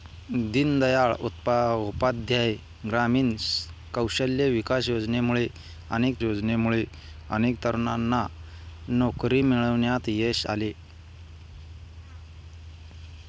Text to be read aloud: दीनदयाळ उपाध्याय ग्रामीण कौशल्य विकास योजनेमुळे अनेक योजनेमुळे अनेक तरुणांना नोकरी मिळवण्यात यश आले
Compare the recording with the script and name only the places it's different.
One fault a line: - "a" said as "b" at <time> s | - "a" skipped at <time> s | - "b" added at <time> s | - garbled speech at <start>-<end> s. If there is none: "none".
none